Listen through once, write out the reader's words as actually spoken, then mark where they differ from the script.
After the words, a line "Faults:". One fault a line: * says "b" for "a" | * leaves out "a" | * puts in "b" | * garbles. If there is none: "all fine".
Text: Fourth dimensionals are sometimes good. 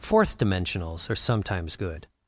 Fourth dimensionals are sometimes good.
Faults:
all fine